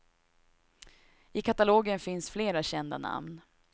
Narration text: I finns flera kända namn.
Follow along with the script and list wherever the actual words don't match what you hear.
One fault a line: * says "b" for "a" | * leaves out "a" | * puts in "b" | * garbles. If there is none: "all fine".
* puts in "katalogen"